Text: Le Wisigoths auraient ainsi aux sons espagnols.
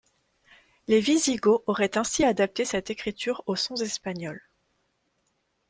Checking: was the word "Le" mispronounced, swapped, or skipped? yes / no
yes